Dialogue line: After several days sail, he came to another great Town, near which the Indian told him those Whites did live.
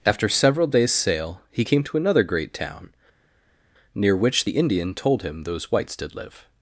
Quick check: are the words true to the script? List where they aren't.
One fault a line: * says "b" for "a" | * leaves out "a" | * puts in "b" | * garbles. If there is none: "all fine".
all fine